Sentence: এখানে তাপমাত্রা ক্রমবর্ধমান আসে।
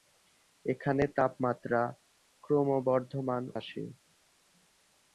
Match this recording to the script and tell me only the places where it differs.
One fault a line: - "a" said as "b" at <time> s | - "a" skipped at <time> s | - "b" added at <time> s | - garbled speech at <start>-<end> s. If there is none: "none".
none